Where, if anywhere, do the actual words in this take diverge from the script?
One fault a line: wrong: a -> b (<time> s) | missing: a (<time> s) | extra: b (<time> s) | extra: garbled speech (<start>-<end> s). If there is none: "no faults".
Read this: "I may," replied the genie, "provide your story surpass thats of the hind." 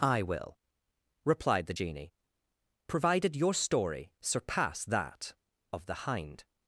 wrong: may -> will (0.2 s)
wrong: provide -> provided (2.9 s)
wrong: thats -> that (4.8 s)